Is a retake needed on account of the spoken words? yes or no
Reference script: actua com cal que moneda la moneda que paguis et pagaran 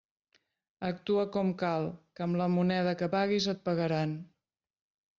yes